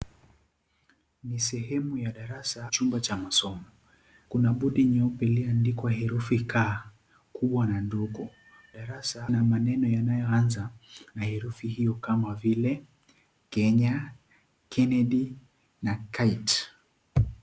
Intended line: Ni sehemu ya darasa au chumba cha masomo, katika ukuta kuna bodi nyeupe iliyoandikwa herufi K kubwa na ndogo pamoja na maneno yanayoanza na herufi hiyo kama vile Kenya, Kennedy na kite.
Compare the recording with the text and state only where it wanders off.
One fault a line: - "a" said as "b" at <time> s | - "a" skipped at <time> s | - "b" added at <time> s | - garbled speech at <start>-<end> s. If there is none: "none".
- "au" skipped at 2.7 s
- "katika ukuta" skipped at 3.6 s
- "pamoja" said as "darasa" at 8.7 s